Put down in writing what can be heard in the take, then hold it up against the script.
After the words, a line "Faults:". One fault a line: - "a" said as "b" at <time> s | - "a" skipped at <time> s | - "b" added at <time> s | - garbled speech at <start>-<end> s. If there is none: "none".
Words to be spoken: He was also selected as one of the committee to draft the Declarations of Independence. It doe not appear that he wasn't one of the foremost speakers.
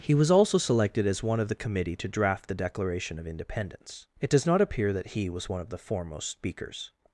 He was also selected as one of the committee to draft the Declaration of Independence. It does not appear that he was one of the foremost speakers.
Faults:
- "Declarations" said as "Declaration" at 2.5 s
- "doe" said as "does" at 4.3 s
- "wasn't" said as "was" at 5.3 s